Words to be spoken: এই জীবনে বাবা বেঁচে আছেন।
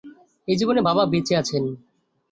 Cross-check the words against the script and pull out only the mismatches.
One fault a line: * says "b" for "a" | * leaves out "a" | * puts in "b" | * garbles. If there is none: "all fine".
all fine